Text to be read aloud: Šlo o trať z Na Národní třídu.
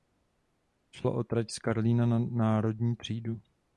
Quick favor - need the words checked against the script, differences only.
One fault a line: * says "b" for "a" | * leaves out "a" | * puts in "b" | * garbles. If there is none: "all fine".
* puts in "Karlína"